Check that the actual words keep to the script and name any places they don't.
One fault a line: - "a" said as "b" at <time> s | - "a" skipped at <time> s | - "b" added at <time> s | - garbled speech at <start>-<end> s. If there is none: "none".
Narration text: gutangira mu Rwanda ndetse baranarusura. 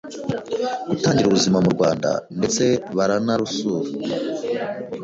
- "ubuzima" added at 1.3 s